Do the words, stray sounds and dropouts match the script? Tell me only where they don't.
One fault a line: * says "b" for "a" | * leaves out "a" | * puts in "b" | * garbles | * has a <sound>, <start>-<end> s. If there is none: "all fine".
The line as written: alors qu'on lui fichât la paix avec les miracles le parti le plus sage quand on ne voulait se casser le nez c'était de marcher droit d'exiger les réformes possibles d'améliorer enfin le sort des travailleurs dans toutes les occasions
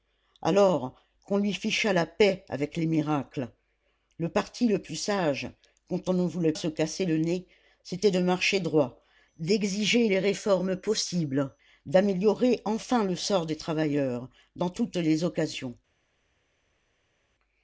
all fine